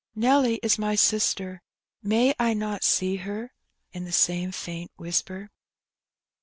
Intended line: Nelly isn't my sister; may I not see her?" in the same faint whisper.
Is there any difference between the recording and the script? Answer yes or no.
yes